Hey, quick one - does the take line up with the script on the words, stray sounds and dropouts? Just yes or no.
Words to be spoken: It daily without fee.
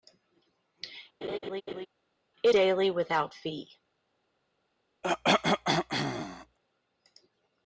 no